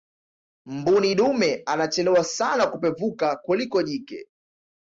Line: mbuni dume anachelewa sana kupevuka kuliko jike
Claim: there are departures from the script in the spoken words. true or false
false